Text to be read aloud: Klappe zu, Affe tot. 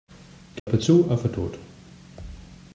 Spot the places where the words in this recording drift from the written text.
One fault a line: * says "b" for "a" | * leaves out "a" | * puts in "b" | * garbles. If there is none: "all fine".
all fine